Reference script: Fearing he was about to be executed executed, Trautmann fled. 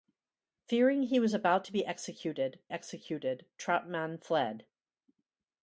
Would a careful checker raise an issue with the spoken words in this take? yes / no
no